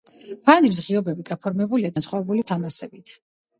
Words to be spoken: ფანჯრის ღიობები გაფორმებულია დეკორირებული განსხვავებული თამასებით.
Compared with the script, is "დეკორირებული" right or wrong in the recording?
wrong